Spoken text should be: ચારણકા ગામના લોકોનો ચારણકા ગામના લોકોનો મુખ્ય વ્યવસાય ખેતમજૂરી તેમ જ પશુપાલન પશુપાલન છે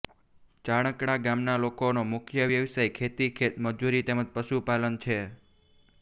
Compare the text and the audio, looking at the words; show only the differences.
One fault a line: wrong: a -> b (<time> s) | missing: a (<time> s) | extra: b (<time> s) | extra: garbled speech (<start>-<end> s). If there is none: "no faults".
missing: ચારણકા ગામના લોકોનો (2.0 s)
extra: ખેતી (2.9 s)
missing: પશુપાલન (5.0 s)